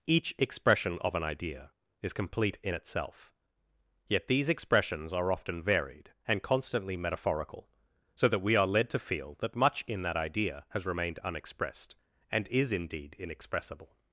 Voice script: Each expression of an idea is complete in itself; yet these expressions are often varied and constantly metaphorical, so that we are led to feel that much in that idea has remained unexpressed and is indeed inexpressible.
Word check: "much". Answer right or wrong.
right